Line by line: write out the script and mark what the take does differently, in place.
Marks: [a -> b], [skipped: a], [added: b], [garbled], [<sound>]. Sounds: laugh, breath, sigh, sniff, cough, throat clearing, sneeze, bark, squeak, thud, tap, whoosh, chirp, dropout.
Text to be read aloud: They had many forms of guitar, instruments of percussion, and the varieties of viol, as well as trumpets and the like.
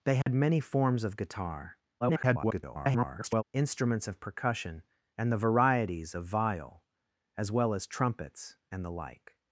They had [dropout] many forms of guitar, [garbled] instruments of percussion, and the varieties of viol, as well as trumpets and the like.